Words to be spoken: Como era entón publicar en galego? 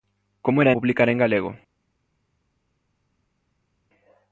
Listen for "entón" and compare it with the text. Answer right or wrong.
wrong